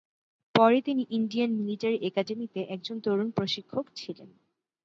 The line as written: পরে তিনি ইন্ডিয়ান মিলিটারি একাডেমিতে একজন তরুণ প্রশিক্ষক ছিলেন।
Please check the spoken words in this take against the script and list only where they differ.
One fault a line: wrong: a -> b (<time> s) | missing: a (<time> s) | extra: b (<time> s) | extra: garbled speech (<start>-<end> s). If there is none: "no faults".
no faults